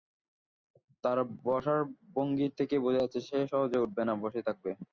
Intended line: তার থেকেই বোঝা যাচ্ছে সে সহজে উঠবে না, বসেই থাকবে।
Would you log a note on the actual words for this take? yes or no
yes